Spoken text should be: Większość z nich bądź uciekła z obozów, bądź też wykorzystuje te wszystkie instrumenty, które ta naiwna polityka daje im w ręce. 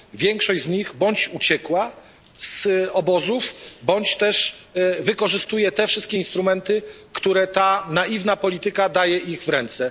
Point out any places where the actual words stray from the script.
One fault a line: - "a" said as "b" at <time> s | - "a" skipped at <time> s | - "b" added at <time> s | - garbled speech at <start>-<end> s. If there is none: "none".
none